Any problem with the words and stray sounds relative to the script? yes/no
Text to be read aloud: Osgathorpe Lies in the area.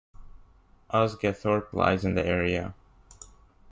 no